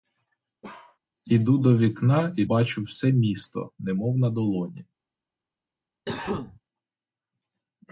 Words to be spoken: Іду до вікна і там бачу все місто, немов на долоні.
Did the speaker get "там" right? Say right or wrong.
wrong